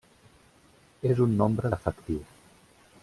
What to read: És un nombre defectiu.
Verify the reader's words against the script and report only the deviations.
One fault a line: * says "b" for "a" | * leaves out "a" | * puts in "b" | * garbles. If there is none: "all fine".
all fine